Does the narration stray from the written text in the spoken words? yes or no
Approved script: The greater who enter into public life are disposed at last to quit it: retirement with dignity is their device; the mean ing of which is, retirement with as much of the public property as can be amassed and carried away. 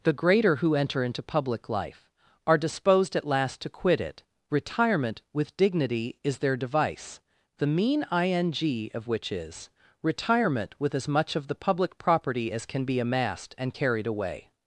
no